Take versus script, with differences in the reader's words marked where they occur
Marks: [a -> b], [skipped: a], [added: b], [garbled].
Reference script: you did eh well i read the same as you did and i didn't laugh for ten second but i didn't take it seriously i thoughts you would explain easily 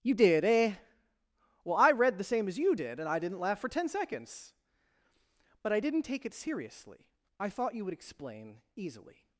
you did eh well i read the same as you did and i didn't laugh for ten [second -> seconds] but i didn't take it seriously i [thoughts -> thought] you would explain easily